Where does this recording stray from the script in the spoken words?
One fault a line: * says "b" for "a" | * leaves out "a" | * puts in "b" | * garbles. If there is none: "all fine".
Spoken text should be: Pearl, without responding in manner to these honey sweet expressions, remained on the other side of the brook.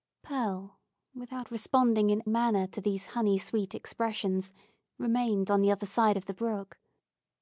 all fine